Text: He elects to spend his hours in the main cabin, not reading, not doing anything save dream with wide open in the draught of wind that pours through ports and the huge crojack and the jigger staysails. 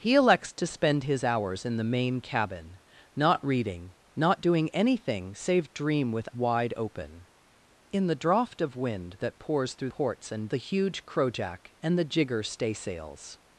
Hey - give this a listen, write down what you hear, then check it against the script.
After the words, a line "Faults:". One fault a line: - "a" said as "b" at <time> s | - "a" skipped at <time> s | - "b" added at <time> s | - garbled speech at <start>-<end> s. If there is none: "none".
He elects to spend his hours in the main cabin, not reading, not doing anything save dream with wide open in the draught of wind that pours through ports and the huge crojack and the jigger staysails.
Faults:
none